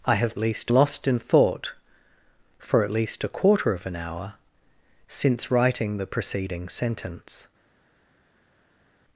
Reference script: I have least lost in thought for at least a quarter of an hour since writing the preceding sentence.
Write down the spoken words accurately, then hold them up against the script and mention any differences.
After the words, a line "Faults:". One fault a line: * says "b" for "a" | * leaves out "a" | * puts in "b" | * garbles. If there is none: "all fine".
I have least lost in thought for at least a quarter of an hour since writing the preceding sentence.
Faults:
all fine